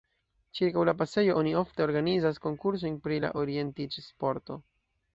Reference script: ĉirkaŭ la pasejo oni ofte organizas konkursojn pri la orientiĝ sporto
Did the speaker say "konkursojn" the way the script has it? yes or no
yes